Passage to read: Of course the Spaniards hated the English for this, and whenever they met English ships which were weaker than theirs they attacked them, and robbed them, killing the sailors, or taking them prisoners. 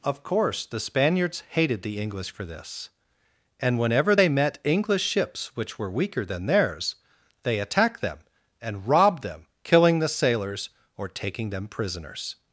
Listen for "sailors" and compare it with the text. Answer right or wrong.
right